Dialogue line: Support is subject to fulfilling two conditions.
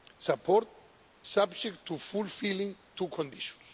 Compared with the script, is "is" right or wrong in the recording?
wrong